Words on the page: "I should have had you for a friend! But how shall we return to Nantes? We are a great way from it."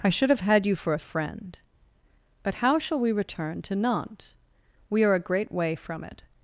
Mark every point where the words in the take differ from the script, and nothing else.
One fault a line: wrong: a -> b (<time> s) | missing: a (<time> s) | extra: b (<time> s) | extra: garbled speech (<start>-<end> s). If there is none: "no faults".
no faults